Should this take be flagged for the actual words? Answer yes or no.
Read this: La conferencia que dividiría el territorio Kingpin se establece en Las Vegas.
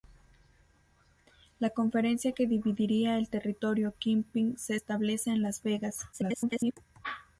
yes